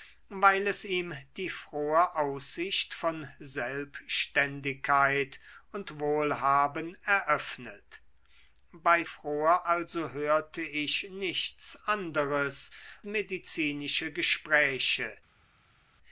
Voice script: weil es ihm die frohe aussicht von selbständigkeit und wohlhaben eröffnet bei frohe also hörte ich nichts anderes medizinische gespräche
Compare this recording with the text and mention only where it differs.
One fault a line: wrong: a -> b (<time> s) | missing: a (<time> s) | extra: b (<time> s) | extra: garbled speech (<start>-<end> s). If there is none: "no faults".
no faults